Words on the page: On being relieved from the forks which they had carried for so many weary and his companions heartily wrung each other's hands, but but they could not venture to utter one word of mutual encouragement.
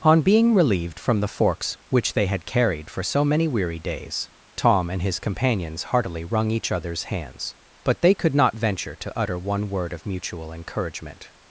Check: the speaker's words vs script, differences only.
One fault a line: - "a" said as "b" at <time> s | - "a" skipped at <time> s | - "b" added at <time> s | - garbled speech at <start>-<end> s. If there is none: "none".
- "days Tom" added at 3.8 s
- "but" skipped at 8.0 s